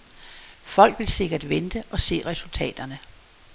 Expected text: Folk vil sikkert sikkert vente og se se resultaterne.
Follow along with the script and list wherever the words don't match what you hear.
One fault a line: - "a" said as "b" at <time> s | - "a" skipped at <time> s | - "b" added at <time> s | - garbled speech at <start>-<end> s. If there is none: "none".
- "sikkert" skipped at 1.5 s
- "se" skipped at 2.2 s